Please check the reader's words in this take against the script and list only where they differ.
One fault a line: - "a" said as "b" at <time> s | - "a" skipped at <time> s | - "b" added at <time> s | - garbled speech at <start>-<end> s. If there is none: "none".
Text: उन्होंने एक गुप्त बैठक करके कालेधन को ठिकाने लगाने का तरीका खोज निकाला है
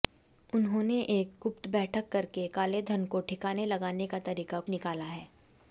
- "खोज" skipped at 4.6 s